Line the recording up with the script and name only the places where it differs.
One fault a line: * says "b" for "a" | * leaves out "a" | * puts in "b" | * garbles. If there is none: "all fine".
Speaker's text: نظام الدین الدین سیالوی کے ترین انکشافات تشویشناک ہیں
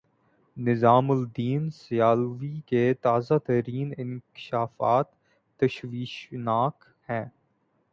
* leaves out "الدین"
* puts in "تازہ"